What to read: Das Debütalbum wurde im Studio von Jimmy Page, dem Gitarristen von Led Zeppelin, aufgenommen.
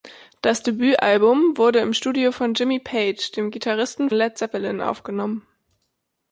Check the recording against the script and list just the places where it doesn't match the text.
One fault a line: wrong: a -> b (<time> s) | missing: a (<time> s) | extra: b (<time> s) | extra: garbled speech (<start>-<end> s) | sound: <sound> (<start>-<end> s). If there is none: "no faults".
missing: von (4.1 s)